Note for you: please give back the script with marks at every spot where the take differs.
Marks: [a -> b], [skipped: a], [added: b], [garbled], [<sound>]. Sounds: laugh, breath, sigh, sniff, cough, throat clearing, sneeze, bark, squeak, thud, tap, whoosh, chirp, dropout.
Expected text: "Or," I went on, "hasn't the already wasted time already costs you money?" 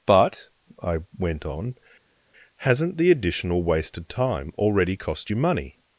["Or," -> But] I went on, "hasn't the [already -> additional] wasted time already [costs -> cost] you money?"